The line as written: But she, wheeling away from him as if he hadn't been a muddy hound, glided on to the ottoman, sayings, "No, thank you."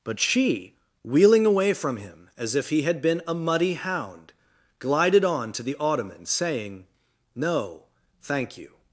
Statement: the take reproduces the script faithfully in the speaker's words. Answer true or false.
false